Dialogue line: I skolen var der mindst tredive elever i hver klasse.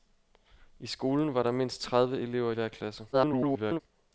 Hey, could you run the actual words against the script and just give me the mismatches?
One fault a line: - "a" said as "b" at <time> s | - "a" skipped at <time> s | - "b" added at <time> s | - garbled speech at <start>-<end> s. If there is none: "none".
- "i" skipped at 2.5 s
- garbled speech at 3.1-3.8 s